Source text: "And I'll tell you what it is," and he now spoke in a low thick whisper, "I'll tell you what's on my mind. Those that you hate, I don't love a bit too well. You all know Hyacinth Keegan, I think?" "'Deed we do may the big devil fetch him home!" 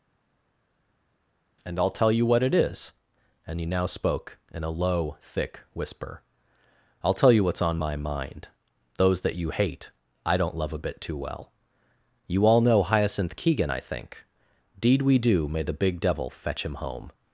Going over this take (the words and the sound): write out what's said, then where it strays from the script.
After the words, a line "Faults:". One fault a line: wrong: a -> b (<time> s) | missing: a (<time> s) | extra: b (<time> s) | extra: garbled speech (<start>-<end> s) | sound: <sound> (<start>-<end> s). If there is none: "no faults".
"And I'll tell you what it is," and he now spoke in a low thick whisper, "I'll tell you what's on my mind. Those that you hate, I don't love a bit too well. You all know Hyacinth Keegan, I think?" "'Deed we do may the big devil fetch him home!"
Faults:
no faults